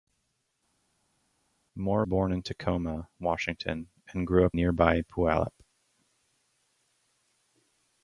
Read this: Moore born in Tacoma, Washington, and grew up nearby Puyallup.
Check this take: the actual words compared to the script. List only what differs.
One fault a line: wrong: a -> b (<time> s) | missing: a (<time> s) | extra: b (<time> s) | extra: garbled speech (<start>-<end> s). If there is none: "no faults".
no faults